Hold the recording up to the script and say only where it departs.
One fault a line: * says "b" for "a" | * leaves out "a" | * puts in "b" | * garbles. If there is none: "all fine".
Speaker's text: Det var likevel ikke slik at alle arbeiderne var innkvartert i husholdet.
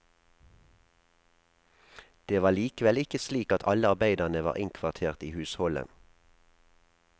all fine